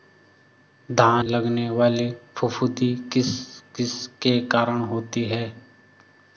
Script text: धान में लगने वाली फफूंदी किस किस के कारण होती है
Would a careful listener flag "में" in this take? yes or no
yes